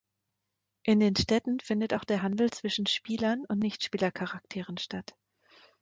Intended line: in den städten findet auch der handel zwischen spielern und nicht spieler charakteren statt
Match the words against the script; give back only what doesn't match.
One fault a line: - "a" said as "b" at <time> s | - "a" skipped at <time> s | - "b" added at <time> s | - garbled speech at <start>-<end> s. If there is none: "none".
none